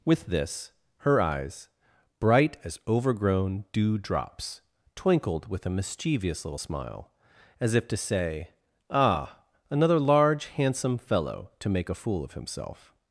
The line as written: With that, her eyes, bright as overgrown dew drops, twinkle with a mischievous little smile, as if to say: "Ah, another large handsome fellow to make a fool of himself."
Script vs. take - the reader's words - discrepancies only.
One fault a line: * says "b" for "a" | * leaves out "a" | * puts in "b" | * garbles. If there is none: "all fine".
* says "this" for "that"
* says "twinkled" for "twinkle"